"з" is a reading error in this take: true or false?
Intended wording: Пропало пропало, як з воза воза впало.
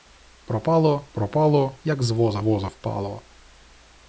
false